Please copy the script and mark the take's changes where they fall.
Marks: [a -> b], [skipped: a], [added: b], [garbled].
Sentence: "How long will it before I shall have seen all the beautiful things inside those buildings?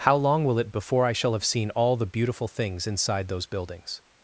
"How long will it before I shall have seen all the beautiful things inside those buildings?